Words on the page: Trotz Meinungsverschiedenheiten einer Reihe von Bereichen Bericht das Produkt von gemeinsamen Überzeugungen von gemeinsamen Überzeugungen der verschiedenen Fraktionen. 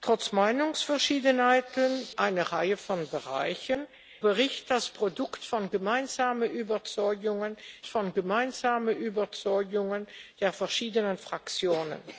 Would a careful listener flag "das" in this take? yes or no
no